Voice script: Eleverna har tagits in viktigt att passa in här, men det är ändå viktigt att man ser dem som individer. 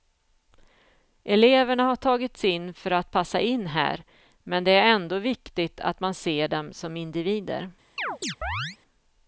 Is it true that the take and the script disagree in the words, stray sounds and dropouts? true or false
true